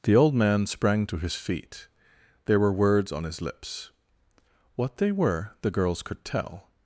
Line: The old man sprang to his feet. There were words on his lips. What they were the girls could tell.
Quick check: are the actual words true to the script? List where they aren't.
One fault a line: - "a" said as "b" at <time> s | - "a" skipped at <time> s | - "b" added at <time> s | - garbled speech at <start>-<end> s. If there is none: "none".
none